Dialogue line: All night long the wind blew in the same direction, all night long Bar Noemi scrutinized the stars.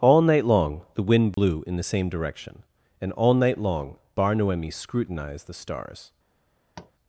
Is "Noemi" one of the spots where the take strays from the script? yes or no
no